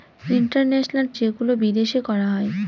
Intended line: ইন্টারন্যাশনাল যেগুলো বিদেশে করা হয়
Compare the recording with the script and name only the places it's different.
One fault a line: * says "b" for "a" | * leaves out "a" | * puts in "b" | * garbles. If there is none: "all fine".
all fine